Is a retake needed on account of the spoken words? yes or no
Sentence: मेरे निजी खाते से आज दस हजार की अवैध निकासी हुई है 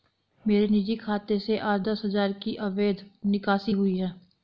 no